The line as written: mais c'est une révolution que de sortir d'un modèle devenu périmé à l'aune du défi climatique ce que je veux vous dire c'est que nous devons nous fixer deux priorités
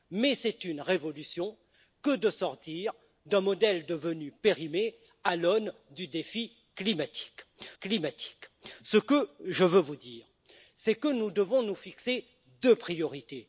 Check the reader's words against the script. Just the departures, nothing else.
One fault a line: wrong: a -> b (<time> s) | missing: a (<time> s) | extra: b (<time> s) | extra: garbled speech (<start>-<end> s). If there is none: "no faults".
extra: climatique (7.8 s)